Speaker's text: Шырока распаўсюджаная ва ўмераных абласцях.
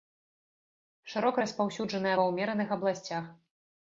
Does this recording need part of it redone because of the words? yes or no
no